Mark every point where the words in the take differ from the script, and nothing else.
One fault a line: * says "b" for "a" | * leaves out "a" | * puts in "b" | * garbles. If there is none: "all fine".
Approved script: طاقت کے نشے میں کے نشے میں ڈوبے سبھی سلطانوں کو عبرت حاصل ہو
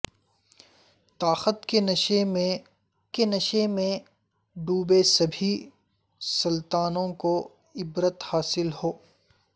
all fine